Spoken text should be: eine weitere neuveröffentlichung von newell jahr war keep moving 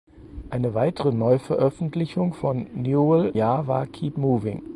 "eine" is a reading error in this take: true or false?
false